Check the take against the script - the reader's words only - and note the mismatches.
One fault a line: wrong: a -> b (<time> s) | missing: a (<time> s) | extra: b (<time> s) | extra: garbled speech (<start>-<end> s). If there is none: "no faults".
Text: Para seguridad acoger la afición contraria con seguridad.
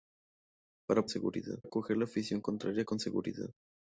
no faults